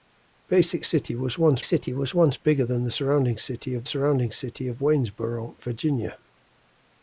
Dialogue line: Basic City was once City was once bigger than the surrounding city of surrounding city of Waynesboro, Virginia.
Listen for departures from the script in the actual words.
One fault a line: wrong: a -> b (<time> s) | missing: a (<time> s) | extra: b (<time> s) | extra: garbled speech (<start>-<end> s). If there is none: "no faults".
no faults